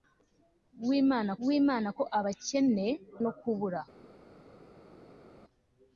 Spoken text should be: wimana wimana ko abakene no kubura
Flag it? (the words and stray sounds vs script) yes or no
no